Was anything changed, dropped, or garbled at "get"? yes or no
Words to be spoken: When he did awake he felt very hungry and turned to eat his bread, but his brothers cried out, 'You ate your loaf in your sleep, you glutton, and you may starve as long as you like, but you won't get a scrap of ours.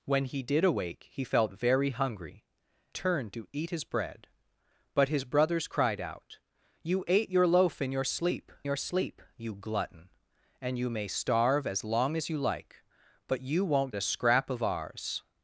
yes